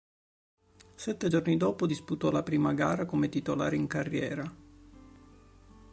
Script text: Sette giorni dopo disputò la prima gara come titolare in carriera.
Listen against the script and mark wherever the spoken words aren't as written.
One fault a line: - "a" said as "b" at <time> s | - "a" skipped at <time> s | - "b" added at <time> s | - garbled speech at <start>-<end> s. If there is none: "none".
none